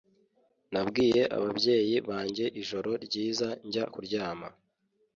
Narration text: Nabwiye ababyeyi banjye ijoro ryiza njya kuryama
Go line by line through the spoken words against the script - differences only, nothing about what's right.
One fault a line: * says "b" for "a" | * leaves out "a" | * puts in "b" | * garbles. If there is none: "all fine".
all fine